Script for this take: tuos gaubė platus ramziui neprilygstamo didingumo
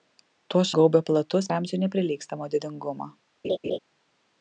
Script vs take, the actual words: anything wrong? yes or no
no